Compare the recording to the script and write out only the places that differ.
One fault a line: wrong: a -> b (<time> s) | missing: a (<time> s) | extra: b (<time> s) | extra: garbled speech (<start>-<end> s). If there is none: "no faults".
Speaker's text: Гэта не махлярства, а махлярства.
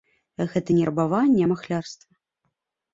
wrong: махлярства -> рабаванне (0.9 s)